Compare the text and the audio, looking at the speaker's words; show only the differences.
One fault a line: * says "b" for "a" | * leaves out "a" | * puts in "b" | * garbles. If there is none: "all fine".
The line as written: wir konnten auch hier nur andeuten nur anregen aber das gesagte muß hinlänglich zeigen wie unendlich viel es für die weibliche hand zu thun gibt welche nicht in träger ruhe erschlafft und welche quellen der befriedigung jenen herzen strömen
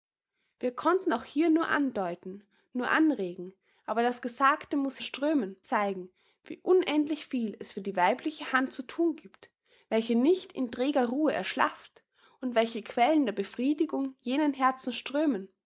* says "strömen" for "hinlänglich"